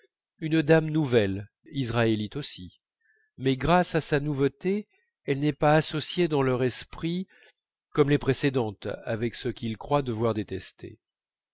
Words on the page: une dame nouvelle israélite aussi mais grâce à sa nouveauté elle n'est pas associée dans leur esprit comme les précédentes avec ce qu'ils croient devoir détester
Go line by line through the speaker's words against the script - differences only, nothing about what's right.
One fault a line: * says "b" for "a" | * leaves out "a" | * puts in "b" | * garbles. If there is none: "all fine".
all fine